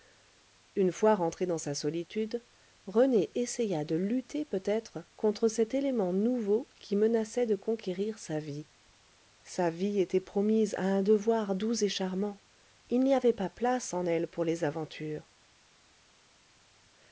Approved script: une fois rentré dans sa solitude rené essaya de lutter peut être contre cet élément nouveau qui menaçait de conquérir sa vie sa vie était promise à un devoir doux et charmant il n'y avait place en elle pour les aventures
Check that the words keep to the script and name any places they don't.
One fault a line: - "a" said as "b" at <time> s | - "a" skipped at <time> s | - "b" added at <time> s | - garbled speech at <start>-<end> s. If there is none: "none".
- "pas" added at 13.3 s